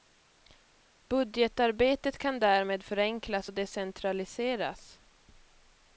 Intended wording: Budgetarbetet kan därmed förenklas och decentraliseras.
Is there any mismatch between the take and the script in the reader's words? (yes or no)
no